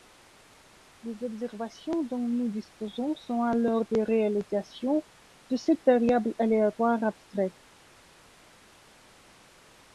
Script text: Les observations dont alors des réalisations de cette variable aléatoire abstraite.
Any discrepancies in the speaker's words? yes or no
yes